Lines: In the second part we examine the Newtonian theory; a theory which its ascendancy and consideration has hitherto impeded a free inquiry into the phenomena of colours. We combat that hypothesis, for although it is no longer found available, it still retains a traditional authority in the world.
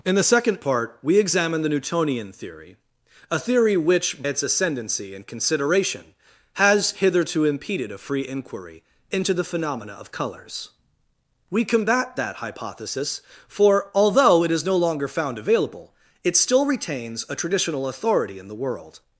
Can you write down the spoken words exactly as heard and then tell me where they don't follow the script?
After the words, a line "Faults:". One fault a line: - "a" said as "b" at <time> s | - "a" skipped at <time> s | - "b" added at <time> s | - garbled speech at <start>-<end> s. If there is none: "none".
In the second part we examine the Newtonian theory; a theory which its ascendancy and consideration has hitherto impeded a free inquiry into the phenomena of colours. We combat that hypothesis, for although it is no longer found available, it still retains a traditional authority in the world.
Faults:
none